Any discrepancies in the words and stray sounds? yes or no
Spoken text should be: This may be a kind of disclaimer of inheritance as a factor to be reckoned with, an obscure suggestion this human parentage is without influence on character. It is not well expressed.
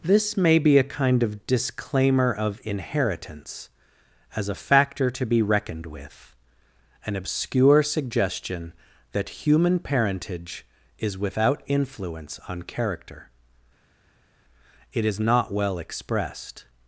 yes